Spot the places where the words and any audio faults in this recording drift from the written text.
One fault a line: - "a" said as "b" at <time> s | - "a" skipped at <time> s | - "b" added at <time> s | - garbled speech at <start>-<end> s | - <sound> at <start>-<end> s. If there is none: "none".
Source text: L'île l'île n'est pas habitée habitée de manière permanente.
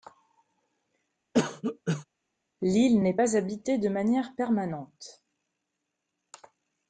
- cough at 1.3-2.0 s
- "l'île" skipped at 3.0 s
- "habitée" skipped at 3.8 s